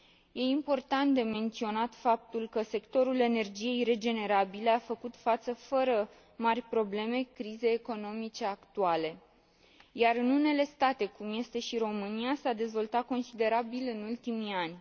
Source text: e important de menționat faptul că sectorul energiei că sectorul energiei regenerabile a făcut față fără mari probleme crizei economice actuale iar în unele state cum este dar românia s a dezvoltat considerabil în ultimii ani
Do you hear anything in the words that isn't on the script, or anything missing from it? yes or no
yes